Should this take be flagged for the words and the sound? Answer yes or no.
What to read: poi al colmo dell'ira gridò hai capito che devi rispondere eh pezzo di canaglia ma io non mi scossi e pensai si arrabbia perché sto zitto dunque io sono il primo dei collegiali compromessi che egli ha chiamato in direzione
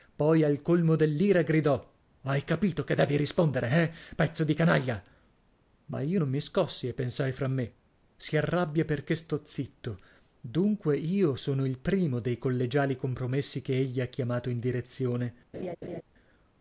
yes